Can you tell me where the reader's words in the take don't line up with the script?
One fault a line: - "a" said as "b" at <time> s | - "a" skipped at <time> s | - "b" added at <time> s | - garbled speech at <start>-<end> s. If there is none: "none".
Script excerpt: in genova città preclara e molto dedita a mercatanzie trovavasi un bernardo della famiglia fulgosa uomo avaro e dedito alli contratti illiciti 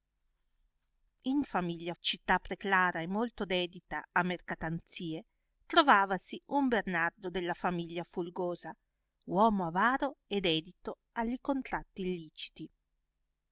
- "genova" said as "famiglia" at 1.4 s